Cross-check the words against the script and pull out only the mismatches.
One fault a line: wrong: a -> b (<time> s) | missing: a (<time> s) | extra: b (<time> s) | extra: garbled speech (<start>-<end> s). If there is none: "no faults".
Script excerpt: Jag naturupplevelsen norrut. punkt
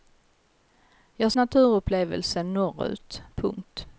no faults